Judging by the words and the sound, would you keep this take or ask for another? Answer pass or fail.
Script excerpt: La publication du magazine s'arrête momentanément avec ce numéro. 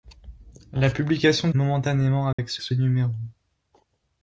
fail